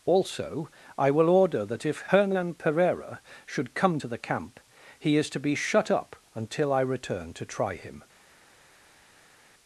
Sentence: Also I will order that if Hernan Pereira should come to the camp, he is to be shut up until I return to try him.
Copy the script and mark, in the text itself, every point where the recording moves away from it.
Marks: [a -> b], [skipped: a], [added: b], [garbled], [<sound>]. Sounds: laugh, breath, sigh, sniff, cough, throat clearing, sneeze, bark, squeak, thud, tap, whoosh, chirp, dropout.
Also I will order that if Hernan Pereira should come to the camp, he is to be shut up until I return to try him.